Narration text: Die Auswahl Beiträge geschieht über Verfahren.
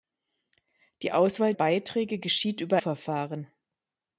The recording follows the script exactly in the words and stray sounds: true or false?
true